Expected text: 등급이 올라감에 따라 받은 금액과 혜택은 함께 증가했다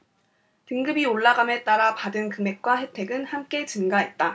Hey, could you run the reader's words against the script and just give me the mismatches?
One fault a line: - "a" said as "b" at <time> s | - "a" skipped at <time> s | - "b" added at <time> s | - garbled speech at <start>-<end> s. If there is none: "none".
none